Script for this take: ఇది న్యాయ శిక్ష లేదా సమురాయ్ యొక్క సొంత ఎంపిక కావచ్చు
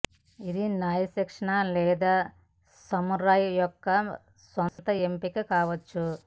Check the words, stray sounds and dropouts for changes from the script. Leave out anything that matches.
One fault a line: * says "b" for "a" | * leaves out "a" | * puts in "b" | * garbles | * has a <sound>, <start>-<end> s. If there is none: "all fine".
* has a dropout, 4.7-4.8 s